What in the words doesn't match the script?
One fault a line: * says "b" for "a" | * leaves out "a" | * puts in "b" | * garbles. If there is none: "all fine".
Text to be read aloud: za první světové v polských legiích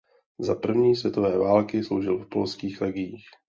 * puts in "války sloužil"